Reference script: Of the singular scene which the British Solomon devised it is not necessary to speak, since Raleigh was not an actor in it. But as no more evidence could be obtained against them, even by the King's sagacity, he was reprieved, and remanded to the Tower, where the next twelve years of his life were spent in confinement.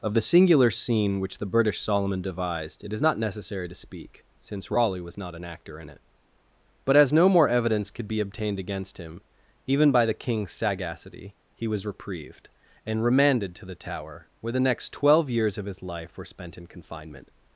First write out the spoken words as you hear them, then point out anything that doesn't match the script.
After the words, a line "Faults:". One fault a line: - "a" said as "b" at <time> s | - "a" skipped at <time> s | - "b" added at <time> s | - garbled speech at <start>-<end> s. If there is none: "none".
Of the singular scene which the British Solomon devised it is not necessary to speak, since Raleigh was not an actor in it. But as no more evidence could be obtained against him, even by the King's sagacity, he was reprieved, and remanded to the Tower, where the next twelve years of his life were spent in confinement.
Faults:
- "them" said as "him" at 9.0 s